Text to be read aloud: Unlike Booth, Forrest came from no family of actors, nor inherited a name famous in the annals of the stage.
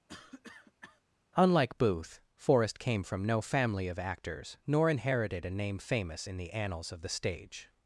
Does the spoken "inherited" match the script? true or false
true